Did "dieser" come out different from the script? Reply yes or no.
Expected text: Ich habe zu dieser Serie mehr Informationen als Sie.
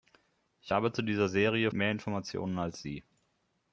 no